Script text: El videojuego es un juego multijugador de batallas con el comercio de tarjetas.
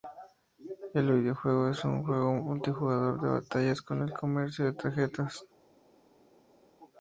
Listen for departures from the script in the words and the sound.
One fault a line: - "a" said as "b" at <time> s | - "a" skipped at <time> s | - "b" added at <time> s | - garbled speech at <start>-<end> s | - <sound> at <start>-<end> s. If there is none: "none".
none